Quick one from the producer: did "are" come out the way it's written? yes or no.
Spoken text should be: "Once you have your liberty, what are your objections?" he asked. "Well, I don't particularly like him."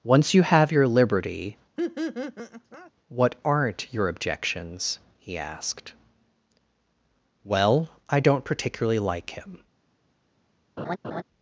no